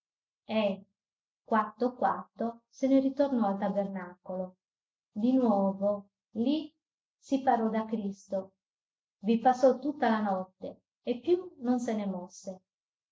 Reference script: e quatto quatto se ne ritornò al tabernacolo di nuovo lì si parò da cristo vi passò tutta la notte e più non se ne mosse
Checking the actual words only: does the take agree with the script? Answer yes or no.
yes